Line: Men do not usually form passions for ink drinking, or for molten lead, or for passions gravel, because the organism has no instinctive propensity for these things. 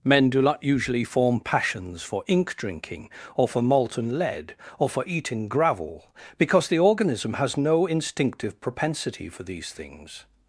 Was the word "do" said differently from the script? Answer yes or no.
no